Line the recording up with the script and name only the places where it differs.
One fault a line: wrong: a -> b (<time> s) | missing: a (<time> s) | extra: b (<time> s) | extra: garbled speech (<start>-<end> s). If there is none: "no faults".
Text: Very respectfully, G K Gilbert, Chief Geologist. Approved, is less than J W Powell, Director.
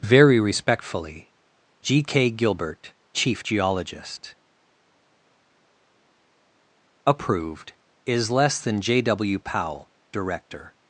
no faults